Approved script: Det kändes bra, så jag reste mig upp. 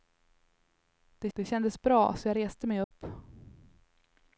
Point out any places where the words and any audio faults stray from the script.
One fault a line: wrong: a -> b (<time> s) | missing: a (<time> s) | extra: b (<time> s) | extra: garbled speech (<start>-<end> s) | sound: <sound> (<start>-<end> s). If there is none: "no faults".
extra: det (1.3 s)
sound: dropout (2.8-2.9 s)